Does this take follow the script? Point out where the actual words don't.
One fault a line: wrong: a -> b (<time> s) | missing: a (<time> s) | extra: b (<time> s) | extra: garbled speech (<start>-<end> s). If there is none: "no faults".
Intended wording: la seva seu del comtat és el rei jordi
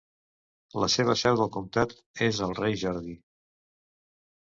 no faults